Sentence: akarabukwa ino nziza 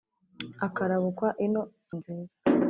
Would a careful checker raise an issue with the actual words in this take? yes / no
no